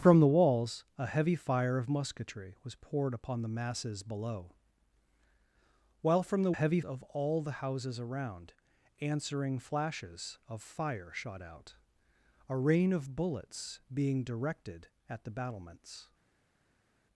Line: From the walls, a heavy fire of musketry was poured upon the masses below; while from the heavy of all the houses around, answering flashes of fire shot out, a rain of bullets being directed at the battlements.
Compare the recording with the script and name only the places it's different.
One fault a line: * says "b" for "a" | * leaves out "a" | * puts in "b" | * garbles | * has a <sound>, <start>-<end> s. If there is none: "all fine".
all fine